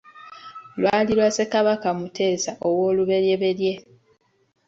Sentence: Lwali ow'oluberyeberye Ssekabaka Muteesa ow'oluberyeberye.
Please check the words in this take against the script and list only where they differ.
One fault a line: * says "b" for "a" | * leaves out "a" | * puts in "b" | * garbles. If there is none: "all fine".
* says "lwa" for "ow'oluberyeberye"